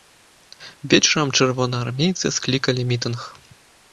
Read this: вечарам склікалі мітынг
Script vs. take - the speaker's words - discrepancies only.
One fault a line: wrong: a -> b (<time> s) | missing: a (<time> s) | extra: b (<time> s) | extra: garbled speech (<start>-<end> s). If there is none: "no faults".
extra: чырвонаармейцы (1.4 s)